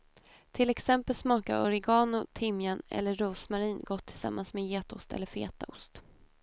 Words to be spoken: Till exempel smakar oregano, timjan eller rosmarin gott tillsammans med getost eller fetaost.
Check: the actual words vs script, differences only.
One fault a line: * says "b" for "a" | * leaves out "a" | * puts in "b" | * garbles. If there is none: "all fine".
all fine